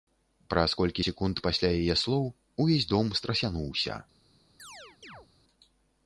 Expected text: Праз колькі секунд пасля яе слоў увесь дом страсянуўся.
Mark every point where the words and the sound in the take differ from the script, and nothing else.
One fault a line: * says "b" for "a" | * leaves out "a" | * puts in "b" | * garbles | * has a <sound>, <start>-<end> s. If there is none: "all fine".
* has a chirp, 4.6-5.3 s